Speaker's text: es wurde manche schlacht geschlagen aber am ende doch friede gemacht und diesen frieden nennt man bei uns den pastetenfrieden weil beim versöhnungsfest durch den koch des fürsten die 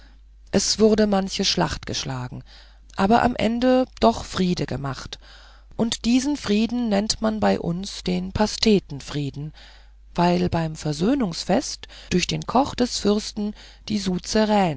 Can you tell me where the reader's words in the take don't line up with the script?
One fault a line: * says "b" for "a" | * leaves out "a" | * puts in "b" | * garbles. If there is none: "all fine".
all fine